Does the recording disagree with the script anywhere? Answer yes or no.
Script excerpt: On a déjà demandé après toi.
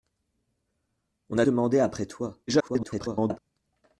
yes